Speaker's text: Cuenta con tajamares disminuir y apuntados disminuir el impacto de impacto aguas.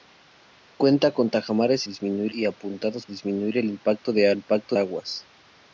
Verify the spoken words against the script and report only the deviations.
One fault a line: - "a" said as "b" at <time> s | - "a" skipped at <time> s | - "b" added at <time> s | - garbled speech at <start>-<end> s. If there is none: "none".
none